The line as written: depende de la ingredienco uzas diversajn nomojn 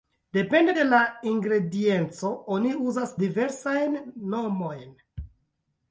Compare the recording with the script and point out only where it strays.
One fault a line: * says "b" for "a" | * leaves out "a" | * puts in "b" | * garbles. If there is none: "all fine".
* puts in "oni"